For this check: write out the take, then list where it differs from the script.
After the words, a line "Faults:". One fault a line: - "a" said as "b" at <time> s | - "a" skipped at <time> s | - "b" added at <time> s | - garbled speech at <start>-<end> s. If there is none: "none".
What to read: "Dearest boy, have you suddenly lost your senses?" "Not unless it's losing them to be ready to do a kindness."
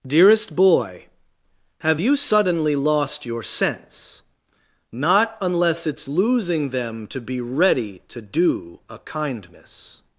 "Dearest boy, have you suddenly lost your sense?" "Not unless it's losing them to be ready to do a kindness."
Faults:
- "senses" said as "sense" at 3.4 s